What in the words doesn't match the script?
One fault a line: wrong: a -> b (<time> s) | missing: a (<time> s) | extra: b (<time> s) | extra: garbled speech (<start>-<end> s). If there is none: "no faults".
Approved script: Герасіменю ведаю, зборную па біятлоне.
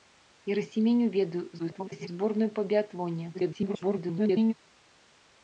extra: garbled speech (1.6-2.1 s)
extra: garbled speech (3.3-4.5 s)